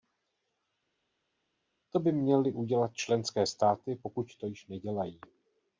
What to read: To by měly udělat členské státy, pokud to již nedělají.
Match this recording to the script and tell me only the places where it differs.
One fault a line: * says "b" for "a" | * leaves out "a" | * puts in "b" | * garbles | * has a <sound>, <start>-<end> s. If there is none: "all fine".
all fine